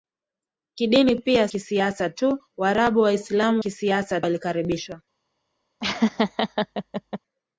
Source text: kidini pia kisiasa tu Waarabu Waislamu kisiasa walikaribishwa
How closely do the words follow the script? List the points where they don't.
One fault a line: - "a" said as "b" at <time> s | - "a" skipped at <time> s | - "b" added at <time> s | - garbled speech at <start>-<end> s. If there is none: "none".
none